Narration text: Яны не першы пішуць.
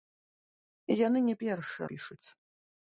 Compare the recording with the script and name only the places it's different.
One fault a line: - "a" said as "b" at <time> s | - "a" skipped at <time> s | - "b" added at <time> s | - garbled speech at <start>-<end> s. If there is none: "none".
none